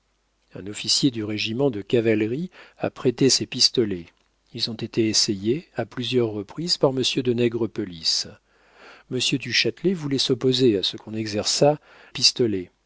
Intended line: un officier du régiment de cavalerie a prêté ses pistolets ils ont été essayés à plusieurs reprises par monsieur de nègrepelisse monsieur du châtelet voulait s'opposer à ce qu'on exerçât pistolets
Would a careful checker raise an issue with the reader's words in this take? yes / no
no